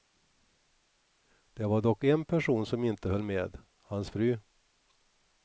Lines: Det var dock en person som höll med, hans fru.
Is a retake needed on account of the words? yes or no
yes